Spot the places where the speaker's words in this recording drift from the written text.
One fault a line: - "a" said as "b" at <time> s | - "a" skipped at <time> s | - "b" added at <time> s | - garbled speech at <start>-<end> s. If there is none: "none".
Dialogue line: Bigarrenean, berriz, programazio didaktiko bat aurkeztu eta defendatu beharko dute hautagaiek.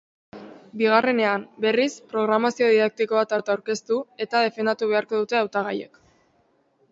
- "bat" added at 3.4 s